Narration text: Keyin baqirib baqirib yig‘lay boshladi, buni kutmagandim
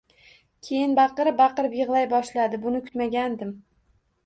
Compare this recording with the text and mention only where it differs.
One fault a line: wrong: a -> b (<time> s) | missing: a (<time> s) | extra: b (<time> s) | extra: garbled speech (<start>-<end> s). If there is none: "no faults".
no faults